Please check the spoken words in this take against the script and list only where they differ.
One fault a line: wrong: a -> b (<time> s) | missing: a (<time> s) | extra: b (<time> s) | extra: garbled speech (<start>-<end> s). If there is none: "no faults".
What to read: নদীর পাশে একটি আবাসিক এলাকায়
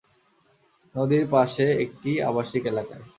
no faults